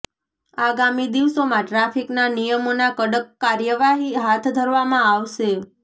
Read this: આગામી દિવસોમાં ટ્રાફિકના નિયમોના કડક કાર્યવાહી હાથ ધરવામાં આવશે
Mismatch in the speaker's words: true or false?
false